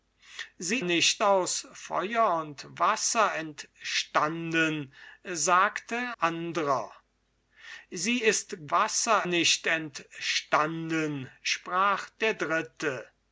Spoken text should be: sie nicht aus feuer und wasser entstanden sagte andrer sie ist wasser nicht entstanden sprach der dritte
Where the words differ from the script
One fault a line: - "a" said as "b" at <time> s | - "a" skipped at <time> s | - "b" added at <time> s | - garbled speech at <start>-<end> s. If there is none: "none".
none